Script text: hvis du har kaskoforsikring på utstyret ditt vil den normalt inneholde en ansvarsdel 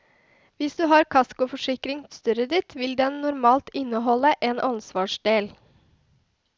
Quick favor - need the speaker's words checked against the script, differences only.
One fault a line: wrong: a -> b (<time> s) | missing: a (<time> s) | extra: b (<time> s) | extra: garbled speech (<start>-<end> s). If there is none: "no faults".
missing: på (2.0 s)